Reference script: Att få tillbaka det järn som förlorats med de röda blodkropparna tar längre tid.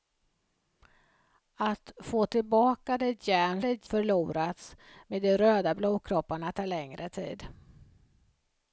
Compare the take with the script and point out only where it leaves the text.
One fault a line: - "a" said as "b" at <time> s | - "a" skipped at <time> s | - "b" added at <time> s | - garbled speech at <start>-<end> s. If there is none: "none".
- "som" said as "det" at 3.6 s